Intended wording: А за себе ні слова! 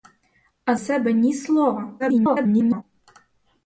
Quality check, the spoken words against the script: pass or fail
fail